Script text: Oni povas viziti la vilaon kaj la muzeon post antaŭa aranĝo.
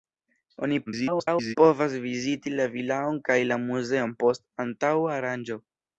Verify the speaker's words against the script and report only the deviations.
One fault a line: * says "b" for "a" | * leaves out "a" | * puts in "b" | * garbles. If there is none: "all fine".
* garbles